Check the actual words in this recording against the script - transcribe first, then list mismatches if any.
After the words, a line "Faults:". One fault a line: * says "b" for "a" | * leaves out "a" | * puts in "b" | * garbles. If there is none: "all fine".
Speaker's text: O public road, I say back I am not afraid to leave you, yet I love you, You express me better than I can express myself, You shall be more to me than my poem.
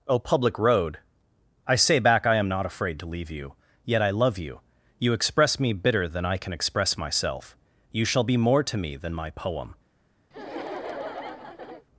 O public road, I say back I am not afraid to leave you, yet I love you, You express me bitter than I can express myself, You shall be more to me than my poem.
Faults:
* says "bitter" for "better"